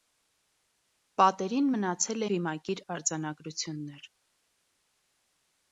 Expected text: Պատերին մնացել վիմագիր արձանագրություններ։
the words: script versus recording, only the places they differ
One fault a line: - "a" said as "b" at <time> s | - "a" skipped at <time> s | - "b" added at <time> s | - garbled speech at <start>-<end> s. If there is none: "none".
none